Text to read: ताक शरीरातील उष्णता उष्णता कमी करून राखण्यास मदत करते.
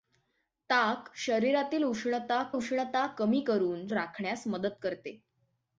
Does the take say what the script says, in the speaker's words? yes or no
yes